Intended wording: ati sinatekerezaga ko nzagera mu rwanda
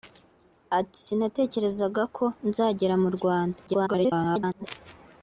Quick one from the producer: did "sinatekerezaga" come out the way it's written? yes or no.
yes